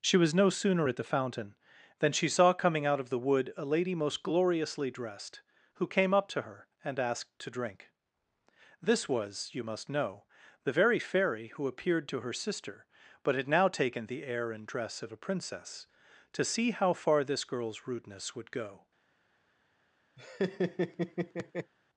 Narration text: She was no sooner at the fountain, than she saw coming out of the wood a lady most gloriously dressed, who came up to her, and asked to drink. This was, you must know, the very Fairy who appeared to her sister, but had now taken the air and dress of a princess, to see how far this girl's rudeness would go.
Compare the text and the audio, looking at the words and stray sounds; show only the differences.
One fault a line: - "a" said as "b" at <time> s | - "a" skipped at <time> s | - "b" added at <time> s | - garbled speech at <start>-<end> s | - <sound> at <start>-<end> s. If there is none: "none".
- laugh at 20.2-21.7 s